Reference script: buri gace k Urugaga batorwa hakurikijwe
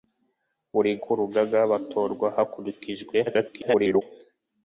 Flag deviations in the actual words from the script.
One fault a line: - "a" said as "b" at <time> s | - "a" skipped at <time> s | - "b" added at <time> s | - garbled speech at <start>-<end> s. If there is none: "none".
- "gace" skipped at 0.9 s
- garbled speech at 3.3-4.0 s